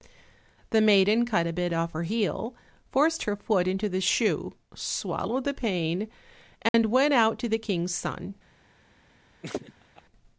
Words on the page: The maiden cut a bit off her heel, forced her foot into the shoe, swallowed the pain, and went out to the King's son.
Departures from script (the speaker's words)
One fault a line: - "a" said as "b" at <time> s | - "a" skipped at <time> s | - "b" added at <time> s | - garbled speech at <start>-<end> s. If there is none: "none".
none